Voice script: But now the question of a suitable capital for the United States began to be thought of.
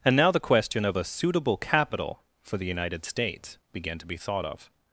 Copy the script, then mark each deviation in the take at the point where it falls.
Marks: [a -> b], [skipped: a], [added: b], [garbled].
[But -> And] now the question of a suitable capital for the United States began to be thought of.